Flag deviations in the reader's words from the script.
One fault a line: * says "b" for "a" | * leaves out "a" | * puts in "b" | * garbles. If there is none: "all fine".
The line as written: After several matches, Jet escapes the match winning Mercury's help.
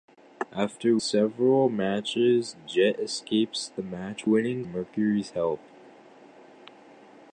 all fine